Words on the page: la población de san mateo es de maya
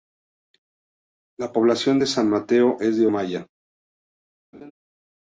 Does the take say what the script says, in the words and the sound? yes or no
no